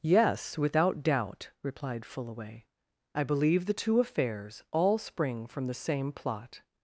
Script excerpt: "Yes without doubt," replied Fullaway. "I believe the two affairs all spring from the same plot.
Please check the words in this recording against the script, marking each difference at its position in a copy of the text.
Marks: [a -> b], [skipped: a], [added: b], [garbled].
"Yes without doubt," replied Fullaway. "I believe the two affairs all spring from the same plot.